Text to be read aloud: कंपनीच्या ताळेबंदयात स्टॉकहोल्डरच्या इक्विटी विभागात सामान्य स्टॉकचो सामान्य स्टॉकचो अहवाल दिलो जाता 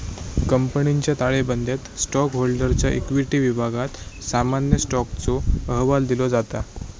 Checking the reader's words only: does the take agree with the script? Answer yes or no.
no